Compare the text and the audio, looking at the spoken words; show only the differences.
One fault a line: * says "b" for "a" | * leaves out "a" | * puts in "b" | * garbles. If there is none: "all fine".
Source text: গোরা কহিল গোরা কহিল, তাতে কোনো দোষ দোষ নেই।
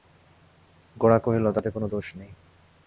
* leaves out "গোরা কহিল"
* leaves out "দোষ"